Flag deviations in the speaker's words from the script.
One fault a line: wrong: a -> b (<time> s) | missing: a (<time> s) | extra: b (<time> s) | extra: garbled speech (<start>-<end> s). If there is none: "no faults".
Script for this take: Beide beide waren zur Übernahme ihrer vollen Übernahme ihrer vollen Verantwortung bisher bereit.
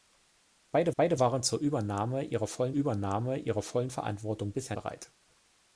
no faults